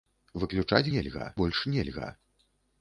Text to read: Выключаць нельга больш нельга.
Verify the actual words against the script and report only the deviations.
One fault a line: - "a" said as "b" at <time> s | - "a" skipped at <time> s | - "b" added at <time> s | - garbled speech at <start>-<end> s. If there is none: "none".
none